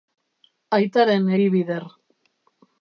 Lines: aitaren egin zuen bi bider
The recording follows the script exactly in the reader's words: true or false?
false